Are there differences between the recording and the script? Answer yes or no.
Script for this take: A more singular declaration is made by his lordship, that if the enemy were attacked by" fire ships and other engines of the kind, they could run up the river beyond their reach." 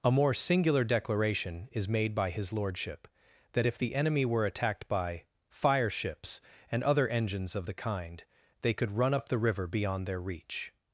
no